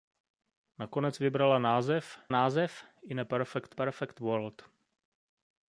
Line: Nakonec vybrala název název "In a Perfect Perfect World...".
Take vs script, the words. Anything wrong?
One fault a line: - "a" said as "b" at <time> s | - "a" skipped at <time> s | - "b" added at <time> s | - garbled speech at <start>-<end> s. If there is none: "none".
none